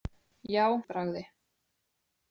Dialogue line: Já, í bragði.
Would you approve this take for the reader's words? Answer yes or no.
yes